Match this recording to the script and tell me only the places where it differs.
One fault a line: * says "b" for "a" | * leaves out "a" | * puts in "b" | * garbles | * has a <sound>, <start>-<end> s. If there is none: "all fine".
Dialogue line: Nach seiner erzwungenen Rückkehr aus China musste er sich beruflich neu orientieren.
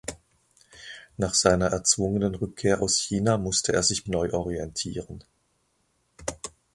* leaves out "beruflich"